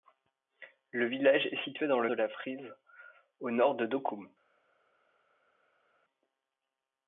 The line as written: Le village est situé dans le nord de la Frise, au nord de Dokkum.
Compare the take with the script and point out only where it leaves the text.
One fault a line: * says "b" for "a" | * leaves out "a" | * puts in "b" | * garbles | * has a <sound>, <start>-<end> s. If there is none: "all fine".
* leaves out "nord"